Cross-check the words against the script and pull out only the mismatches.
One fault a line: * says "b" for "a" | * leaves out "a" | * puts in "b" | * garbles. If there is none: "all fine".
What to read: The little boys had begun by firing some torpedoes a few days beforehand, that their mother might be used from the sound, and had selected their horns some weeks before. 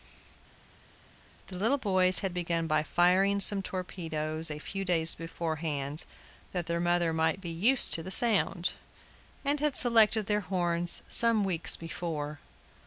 * says "to" for "from"